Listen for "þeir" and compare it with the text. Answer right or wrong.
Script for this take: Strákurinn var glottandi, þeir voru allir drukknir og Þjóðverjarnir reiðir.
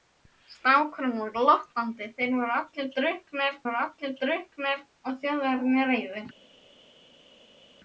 right